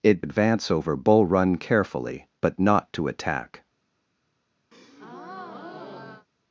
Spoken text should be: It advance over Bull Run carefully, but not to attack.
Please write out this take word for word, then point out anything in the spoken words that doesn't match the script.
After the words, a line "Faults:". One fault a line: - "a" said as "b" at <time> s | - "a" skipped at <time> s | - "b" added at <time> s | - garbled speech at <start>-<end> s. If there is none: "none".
It advance over Bull Run carefully, but not to attack.
Faults:
none